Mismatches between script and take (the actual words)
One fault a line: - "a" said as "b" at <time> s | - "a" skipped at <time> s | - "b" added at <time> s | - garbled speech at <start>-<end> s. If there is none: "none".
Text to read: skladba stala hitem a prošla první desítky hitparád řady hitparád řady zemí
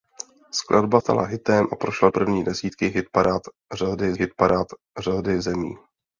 none